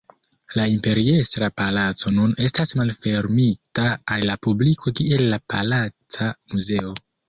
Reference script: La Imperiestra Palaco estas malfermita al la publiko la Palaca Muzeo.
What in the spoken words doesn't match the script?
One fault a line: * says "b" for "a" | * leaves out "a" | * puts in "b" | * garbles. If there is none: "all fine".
* puts in "nun"
* puts in "kiel"